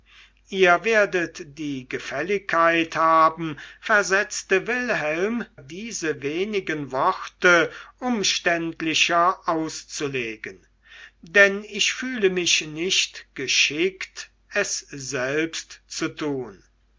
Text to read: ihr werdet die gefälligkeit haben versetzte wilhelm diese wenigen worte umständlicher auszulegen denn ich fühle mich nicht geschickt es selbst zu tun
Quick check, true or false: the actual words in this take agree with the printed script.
true